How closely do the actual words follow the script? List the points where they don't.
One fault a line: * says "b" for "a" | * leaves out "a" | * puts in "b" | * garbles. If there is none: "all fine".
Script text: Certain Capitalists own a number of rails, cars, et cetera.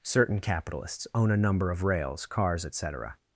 all fine